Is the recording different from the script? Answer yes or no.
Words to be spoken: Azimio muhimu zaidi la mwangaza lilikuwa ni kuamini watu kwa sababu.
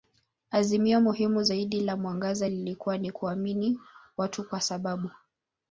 no